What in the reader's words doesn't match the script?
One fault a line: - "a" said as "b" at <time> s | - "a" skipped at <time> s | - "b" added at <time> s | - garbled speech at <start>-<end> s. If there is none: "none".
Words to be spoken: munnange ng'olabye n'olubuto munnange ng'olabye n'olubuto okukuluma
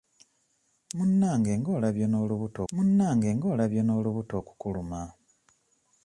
none